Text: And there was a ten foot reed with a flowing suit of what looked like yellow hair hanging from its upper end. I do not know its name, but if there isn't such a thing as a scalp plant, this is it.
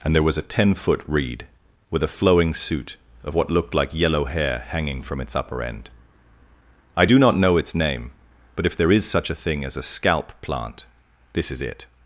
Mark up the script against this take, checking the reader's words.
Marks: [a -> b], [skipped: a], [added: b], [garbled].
And there was a ten foot reed with a flowing suit of what looked like yellow hair hanging from its upper end. I do not know its name, but if there [isn't -> is] such a thing as a scalp plant, this is it.